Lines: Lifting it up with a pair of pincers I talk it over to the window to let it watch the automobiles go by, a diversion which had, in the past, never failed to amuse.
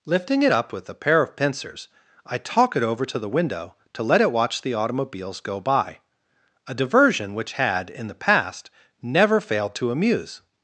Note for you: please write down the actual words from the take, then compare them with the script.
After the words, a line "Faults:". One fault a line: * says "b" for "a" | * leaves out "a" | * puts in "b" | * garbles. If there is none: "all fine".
Lifting it up with a pair of pincers I talk it over to the window to let it watch the automobiles go by, a diversion which had, in the past, never failed to amuse.
Faults:
all fine